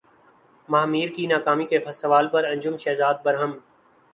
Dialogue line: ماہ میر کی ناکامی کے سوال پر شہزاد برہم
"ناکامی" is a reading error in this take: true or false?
false